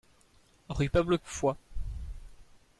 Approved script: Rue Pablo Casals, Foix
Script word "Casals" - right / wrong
wrong